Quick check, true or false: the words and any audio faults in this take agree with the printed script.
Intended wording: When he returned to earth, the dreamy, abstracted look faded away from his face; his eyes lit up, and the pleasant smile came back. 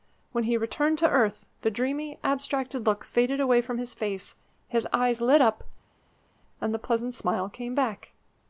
true